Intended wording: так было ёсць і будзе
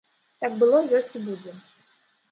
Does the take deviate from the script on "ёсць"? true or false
false